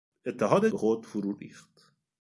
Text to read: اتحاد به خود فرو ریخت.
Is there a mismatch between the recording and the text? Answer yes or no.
no